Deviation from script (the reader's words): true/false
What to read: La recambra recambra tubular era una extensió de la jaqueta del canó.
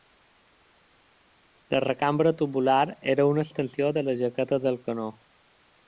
true